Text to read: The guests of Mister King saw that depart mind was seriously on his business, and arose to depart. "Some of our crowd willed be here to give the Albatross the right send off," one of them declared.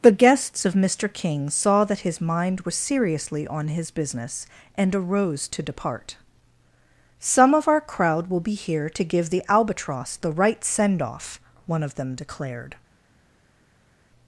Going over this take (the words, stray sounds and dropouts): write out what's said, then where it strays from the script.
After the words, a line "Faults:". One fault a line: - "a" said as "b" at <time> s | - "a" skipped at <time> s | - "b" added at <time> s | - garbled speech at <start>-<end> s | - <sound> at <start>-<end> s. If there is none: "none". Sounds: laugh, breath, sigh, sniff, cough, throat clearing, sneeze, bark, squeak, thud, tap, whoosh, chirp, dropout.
The guests of Mister King saw that his mind was seriously on his business, and arose to depart. "Some of our crowd will be here to give the Albatross the right send off," one of them declared.
Faults:
- "depart" said as "his" at 2.0 s
- "willed" said as "will" at 8.3 s